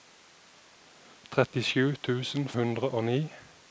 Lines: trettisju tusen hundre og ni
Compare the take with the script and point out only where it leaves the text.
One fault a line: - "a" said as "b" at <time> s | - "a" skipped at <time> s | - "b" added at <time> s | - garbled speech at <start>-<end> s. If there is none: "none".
none